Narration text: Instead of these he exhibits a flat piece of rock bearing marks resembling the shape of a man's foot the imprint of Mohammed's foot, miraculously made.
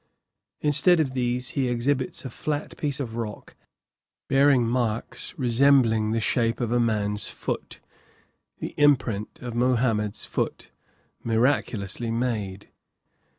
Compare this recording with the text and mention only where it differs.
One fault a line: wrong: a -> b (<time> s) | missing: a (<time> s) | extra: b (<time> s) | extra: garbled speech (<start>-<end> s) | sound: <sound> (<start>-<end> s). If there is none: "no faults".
no faults